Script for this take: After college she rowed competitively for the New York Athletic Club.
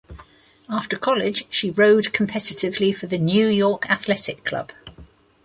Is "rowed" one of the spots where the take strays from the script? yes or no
no